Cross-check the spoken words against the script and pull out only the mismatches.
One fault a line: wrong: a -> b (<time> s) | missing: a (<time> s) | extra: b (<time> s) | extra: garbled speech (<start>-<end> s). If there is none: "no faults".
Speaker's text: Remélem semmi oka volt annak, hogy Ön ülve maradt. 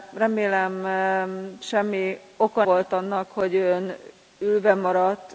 no faults